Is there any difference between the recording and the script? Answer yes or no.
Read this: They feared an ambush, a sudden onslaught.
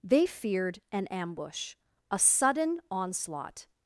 no